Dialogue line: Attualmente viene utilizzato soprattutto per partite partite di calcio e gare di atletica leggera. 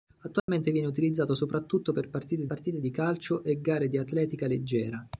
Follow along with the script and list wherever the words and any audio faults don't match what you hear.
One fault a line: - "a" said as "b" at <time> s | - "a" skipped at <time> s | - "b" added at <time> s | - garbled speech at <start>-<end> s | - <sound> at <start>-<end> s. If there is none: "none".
- dropout at 0.4-0.5 s